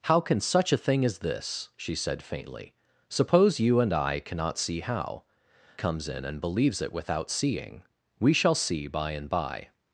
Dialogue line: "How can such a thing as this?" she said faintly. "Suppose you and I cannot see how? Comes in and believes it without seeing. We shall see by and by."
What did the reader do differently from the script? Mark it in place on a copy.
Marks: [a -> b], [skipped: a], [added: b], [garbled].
"How can such a thing as this?" she said faintly. "Suppose you and I cannot see how? Comes in and believes it without seeing. We shall see by and by."